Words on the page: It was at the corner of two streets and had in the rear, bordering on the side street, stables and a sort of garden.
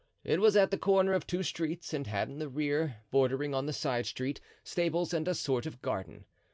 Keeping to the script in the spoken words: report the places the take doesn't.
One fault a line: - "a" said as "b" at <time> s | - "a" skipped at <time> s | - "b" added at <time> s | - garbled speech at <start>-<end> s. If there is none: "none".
none